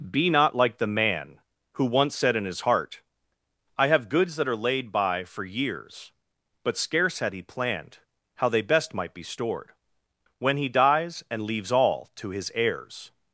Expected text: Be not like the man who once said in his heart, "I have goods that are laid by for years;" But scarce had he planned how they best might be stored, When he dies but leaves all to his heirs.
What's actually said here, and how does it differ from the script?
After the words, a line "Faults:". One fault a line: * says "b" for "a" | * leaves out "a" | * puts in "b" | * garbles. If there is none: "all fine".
Be not like the man who once said in his heart, "I have goods that are laid by for years;" But scarce had he planned how they best might be stored, When he dies and leaves all to his heirs.
Faults:
* says "and" for "but"